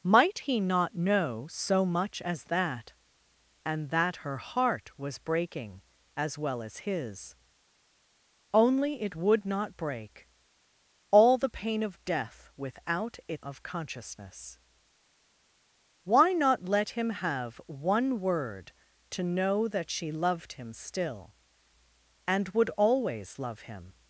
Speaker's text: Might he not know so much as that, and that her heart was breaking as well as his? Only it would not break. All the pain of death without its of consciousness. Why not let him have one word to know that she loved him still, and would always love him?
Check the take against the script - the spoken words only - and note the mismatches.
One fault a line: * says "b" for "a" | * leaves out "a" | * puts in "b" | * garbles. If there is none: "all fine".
all fine